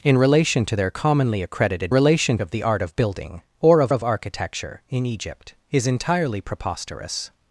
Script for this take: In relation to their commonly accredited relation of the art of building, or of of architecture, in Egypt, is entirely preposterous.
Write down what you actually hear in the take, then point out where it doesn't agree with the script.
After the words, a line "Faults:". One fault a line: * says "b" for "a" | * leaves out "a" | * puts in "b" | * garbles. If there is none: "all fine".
In relation to their commonly accredited relation of the art of building, or of of architecture, in Egypt, is entirely preposterous.
Faults:
all fine